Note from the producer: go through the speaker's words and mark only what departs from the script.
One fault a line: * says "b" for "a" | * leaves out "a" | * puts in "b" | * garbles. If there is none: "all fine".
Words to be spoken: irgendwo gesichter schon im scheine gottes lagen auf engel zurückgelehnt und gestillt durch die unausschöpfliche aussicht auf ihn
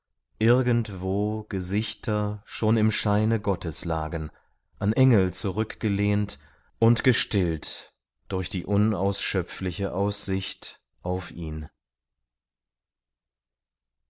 * says "an" for "auf"